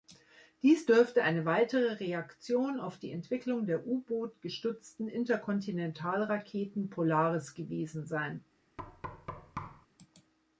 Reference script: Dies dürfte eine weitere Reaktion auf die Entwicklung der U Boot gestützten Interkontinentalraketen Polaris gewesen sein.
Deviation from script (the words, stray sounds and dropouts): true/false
true